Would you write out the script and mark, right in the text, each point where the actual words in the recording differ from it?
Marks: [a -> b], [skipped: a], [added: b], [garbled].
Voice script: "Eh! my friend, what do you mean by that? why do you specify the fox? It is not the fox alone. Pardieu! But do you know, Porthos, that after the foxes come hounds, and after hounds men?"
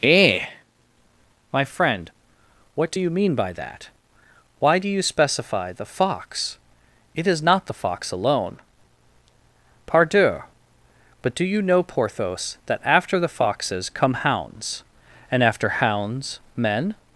"Eh! my friend, what do you mean by that? why do you specify the fox? It is not the fox alone. Pardieu! But do you know, Porthos, that after the foxes come hounds, and after hounds men?"